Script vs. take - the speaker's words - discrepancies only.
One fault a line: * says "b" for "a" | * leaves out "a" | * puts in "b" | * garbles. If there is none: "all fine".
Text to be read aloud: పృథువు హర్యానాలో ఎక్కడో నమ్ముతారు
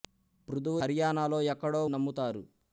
all fine